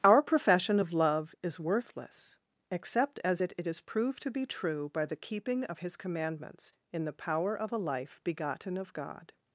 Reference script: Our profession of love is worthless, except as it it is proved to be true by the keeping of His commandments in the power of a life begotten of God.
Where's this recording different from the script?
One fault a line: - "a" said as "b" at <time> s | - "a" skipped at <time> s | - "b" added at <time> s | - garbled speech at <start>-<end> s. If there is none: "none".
none